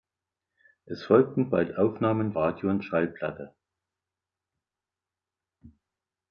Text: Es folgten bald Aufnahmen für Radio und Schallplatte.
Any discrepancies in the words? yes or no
yes